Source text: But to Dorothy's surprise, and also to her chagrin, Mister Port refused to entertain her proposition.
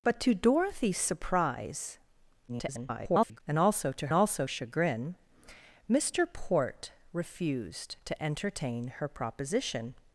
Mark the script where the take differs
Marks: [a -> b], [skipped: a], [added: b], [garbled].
But to Dorothy's surprise, [garbled] and also to [her -> also] chagrin, Mister Port refused to entertain her proposition.